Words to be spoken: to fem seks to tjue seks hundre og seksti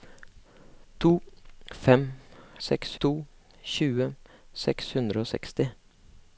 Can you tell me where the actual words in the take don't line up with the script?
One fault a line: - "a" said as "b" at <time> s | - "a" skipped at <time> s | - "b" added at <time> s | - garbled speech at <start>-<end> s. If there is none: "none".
none